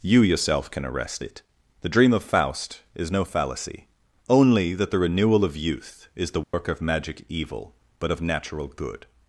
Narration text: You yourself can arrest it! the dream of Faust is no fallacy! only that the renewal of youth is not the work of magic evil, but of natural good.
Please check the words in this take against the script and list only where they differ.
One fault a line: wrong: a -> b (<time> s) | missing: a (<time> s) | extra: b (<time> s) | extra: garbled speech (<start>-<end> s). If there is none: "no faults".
missing: not (6.3 s)